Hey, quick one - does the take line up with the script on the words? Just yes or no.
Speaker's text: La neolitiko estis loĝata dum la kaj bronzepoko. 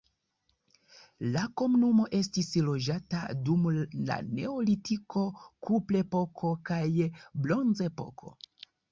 no